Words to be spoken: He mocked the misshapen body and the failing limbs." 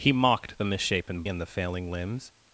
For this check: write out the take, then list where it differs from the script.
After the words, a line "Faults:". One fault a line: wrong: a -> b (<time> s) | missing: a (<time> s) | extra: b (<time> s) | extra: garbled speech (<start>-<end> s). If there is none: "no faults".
He mocked the misshapen and the failing limbs."
Faults:
missing: body (1.2 s)